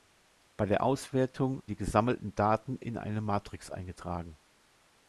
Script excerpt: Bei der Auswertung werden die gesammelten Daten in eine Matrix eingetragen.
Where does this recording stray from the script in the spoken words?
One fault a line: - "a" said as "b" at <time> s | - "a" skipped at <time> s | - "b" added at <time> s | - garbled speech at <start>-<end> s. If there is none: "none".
- "werden" skipped at 1.6 s